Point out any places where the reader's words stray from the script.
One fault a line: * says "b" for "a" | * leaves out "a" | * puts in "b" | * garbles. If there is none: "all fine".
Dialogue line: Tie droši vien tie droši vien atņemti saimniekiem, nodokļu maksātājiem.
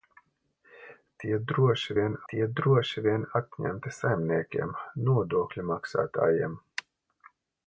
all fine